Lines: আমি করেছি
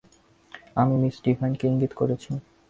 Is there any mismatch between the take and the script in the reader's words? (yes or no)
yes